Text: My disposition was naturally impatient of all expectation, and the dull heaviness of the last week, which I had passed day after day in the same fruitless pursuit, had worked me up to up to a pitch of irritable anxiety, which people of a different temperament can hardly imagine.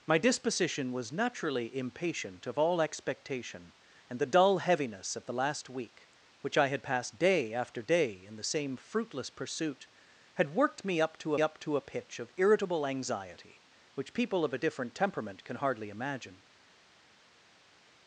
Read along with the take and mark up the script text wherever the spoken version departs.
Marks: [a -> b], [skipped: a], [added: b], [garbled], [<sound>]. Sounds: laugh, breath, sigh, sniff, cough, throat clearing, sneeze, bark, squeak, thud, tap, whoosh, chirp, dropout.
My disposition was naturally impatient of all expectation, and the dull heaviness of the last week, which I had passed day after day in the same fruitless pursuit, had worked me up to up to a pitch of irritable anxiety, which people of a different temperament can hardly imagine.